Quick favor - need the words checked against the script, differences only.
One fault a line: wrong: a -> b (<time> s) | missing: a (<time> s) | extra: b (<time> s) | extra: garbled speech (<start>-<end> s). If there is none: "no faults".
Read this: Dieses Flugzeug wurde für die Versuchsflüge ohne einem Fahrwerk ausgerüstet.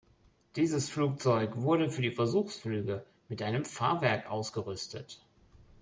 wrong: ohne -> mit (3.3 s)